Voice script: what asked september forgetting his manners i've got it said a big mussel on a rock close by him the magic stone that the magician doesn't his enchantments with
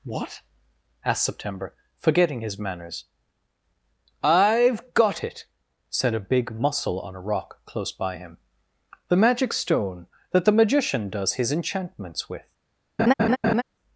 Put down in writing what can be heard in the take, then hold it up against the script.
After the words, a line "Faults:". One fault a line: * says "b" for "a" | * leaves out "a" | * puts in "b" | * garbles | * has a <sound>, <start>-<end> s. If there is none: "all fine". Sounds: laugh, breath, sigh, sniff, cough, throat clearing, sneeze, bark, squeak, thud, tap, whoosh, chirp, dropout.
what asked september forgetting his manners i've got it said a big mussel on a rock close by him the magic stone that the magician does his enchantments with
Faults:
* says "does" for "doesn't"
* has a laugh, 13.0-13.6 s